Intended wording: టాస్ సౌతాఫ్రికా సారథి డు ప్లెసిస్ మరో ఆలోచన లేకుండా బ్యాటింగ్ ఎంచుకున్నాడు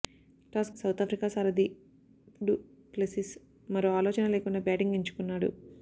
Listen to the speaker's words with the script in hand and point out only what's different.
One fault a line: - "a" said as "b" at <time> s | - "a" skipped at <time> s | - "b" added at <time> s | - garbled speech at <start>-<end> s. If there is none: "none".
none